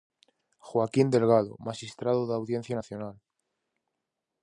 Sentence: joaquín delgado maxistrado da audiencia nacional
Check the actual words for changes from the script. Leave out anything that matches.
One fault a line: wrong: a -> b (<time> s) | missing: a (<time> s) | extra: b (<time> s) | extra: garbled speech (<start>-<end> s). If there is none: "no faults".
no faults